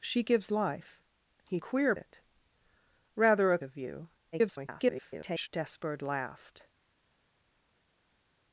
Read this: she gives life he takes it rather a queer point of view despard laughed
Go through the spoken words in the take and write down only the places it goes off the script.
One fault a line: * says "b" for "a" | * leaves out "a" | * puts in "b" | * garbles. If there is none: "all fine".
* says "queer" for "takes"
* leaves out "queer point"
* garbles